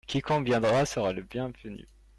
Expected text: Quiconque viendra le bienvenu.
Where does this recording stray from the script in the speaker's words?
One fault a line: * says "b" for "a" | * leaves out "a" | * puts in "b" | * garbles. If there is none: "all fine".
* puts in "sera"